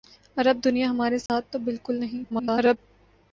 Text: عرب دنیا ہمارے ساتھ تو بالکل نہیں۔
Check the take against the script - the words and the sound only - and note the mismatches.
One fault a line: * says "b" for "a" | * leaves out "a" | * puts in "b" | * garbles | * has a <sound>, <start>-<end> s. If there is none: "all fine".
* has a dropout, 1.3-1.3 s
* garbles